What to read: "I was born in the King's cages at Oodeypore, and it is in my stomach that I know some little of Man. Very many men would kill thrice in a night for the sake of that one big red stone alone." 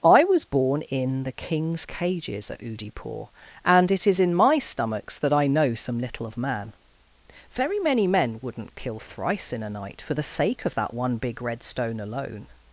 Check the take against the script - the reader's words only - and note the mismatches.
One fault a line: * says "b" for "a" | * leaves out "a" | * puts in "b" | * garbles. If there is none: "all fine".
* says "stomachs" for "stomach"
* says "wouldn't" for "would"